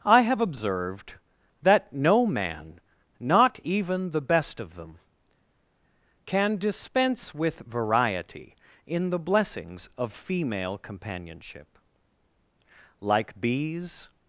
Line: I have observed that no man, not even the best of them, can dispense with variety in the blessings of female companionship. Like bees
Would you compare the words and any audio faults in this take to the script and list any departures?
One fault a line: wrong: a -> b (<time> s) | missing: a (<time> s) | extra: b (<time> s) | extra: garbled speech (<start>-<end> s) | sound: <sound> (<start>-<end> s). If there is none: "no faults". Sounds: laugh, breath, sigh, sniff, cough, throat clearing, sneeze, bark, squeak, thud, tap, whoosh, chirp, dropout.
no faults